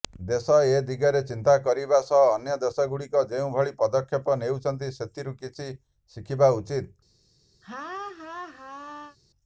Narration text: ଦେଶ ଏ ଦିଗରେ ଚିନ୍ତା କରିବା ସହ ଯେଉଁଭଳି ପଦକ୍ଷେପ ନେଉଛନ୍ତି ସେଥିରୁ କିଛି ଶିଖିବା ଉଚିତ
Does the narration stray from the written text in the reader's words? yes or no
yes